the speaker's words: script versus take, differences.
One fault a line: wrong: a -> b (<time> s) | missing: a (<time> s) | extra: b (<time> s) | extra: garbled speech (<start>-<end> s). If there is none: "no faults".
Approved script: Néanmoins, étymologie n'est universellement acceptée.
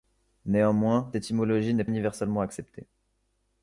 no faults